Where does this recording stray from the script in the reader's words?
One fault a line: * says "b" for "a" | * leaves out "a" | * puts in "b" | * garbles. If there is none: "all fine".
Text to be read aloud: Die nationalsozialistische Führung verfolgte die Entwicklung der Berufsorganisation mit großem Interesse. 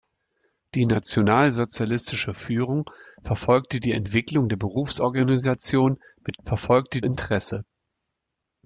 * says "verfolgte" for "großem"